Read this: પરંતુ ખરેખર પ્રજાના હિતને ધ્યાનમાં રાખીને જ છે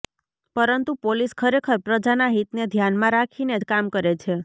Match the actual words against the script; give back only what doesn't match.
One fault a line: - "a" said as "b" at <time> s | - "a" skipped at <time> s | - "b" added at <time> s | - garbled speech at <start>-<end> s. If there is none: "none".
- "પોલીસ" added at 1.0 s
- "કામ કરે" added at 3.7 s